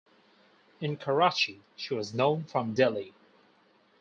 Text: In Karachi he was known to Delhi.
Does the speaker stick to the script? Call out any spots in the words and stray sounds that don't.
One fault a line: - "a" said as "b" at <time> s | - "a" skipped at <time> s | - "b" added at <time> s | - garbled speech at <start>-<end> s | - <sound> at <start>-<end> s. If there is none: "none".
- "he" said as "she" at 1.8 s
- "to" said as "from" at 2.4 s